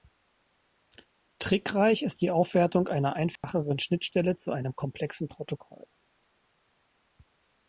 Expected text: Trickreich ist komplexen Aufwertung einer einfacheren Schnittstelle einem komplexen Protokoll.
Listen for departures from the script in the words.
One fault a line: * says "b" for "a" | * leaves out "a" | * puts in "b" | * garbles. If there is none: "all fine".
* says "die" for "komplexen"
* puts in "zu"